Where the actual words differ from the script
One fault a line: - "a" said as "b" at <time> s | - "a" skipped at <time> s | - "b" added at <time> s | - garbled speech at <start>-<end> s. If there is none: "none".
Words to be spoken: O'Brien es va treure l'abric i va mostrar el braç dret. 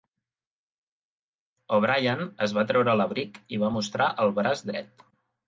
none